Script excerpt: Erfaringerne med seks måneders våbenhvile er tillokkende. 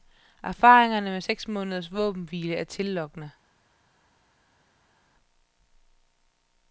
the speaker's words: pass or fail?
pass